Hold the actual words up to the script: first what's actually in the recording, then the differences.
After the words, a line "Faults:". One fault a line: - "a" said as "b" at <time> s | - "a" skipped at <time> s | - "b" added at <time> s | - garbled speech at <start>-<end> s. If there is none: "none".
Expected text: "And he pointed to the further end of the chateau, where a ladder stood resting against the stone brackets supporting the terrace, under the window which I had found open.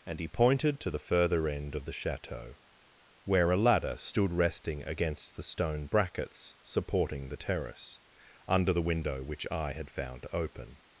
"And he pointed to the further end of the chateau, where a ladder stood resting against the stone brackets supporting the terrace, under the window which I had found open.
Faults:
none